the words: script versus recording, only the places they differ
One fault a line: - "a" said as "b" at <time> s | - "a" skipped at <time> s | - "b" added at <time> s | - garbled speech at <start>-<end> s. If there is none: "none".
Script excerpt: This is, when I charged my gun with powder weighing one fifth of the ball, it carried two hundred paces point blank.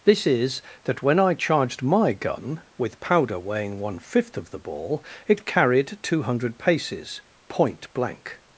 - "that" added at 0.8 s